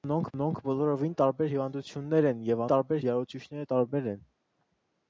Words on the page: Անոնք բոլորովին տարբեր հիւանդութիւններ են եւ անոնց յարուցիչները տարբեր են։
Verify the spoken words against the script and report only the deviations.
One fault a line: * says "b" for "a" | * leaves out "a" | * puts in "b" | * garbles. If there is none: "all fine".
* puts in "անոնք"
* says "տարբեր" for "անոնց"